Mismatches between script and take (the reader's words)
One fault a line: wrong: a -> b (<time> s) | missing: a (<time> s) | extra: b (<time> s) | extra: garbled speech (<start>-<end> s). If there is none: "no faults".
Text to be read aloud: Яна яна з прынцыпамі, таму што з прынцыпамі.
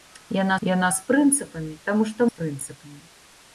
no faults